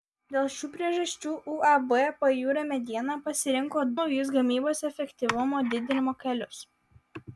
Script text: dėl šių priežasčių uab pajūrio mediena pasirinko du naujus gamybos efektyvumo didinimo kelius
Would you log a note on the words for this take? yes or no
yes